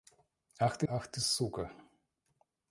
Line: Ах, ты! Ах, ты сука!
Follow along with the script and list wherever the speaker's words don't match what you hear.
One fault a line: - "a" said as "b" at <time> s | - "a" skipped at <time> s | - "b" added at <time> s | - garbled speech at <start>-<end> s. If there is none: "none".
none